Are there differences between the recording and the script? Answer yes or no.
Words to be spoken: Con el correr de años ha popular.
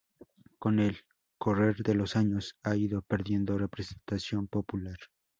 yes